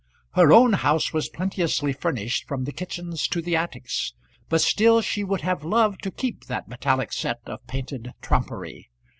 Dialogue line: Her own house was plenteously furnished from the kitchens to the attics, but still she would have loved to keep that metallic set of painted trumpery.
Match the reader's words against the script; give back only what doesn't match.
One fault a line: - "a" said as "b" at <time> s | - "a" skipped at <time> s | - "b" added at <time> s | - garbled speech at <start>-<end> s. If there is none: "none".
none